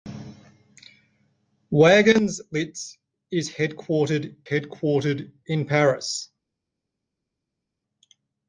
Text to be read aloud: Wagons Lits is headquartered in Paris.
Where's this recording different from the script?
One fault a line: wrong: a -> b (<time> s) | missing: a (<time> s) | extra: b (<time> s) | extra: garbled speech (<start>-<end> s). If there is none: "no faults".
extra: headquartered (4.4 s)